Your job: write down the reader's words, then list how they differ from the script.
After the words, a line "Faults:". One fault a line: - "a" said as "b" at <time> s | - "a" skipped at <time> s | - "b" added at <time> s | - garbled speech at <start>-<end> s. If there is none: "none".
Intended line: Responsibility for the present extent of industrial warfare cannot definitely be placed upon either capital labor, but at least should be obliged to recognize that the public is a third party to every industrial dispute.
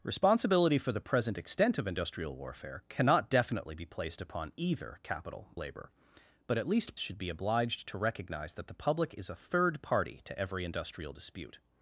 Responsibility for the present extent of industrial warfare cannot definitely be placed upon either capital labor, but at least should be obliged to recognize that the public is a third party to every industrial dispute.
Faults:
none